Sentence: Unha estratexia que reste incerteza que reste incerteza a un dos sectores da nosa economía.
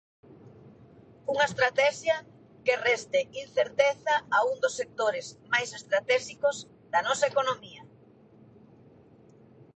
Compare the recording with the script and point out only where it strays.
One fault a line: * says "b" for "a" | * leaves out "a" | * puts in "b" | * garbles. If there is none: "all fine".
* leaves out "que reste incerteza"
* puts in "máis estratéxicos"